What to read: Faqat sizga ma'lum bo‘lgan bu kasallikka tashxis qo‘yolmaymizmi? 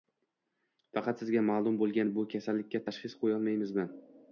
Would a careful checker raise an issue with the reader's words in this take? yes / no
no